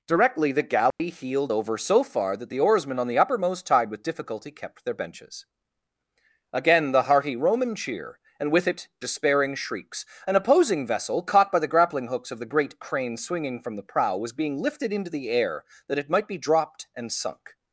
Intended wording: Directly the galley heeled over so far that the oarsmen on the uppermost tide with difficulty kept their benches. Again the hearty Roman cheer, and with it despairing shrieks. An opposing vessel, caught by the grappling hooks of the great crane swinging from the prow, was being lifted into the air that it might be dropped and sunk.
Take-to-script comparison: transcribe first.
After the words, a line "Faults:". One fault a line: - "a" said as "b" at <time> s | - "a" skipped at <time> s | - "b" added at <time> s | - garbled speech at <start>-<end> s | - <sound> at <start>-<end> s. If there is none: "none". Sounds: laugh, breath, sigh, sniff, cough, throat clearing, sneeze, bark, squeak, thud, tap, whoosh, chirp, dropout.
Directly the galley heeled over so far that the oarsmen on the uppermost tide with difficulty kept their benches. Again the hearty Roman cheer, and with it despairing shrieks. An opposing vessel, caught by the grappling hooks of the great crane swinging from the prow, was being lifted into the air that it might be dropped and sunk.
Faults:
- dropout at 0.9-1.0 s